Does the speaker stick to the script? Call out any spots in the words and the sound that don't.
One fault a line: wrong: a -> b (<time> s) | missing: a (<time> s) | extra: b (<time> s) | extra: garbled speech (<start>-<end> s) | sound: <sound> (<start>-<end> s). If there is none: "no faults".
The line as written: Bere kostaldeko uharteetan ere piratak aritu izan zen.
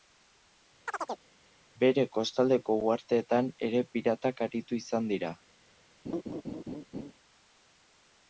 sound: chirp (0.9-1.3 s)
wrong: zen -> dira (5.2 s)
sound: laugh (6.1-7.1 s)